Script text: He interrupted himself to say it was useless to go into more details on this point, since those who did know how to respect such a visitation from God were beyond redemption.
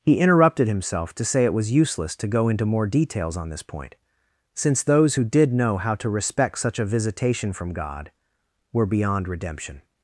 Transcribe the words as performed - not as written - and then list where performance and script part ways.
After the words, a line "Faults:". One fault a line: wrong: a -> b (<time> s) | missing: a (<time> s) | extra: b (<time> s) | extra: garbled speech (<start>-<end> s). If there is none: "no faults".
He interrupted himself to say it was useless to go into more details on this point, since those who did know how to respect such a visitation from God were beyond redemption.
Faults:
no faults